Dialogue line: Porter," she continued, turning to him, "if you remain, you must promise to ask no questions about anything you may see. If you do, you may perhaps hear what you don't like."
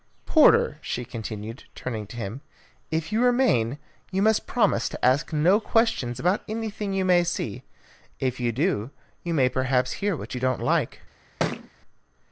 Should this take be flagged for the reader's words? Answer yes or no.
no